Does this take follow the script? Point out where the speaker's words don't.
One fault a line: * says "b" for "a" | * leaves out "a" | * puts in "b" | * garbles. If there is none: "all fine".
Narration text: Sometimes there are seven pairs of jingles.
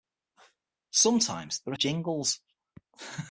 * leaves out "seven pairs of"